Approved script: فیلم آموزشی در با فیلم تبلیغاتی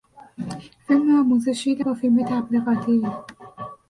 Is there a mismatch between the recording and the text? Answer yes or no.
no